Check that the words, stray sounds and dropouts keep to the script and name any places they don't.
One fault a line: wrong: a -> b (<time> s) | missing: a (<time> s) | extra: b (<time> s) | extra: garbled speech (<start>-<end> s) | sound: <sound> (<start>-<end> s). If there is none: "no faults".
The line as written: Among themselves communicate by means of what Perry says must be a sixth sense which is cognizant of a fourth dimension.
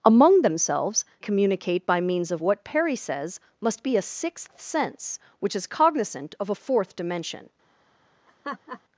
sound: laugh (8.3-8.8 s)